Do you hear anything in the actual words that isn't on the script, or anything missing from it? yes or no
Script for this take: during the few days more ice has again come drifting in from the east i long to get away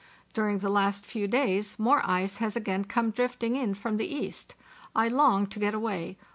yes